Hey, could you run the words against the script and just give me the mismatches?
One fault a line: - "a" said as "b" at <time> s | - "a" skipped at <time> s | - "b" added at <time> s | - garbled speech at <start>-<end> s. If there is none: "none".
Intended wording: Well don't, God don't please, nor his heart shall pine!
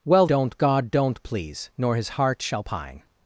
none